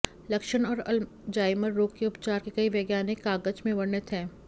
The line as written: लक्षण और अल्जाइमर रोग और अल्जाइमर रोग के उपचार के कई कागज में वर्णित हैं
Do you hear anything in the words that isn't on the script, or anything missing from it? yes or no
yes